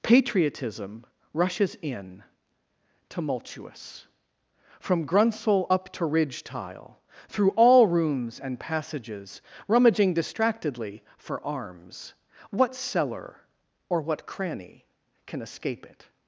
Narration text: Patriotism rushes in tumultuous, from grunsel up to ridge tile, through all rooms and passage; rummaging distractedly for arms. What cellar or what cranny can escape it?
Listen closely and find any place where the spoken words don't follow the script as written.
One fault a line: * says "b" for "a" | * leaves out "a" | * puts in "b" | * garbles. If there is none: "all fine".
* says "passages" for "passage"